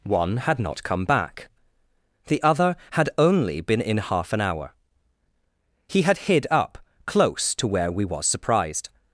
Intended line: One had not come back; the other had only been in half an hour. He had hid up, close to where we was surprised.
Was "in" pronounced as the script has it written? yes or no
yes